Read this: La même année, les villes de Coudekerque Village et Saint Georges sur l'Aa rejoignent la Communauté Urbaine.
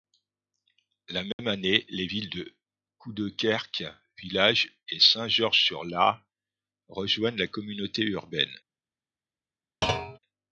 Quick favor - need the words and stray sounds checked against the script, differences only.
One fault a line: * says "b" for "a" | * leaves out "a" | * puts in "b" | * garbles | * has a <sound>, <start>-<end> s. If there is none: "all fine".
* has a dropout, 1.3-1.4 s
* has a thud, 9.8-10.2 s